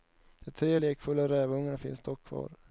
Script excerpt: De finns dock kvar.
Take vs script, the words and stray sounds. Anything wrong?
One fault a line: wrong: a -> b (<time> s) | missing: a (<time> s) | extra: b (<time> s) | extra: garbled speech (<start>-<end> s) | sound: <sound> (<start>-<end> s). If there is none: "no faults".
extra: tre lekfulla rävungarna (0.5 s)